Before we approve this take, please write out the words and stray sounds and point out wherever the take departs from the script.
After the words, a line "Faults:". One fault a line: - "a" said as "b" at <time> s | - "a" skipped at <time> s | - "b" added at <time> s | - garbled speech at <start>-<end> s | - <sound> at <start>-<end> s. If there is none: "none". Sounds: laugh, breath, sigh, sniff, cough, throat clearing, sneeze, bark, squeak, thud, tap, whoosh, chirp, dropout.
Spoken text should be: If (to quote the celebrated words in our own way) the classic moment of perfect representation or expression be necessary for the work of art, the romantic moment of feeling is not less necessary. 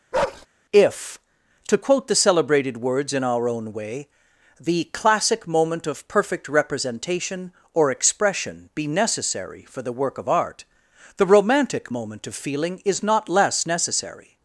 If (to quote the celebrated words in our own way) the classic moment of perfect representation or expression be necessary for the work of art, the romantic moment of feeling is not less necessary.
Faults:
- bark at 0.1-0.5 s